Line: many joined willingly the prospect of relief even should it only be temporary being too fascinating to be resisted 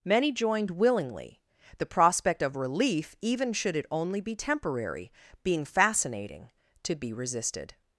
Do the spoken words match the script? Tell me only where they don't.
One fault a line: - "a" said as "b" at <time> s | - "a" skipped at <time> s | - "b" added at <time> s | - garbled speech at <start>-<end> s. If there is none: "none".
- "too" skipped at 5.6 s